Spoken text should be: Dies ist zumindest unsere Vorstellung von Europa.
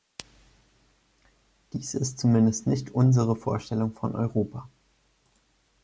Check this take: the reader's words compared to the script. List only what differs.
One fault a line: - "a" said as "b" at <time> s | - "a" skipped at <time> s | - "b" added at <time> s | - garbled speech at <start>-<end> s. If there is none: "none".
- "nicht" added at 2.6 s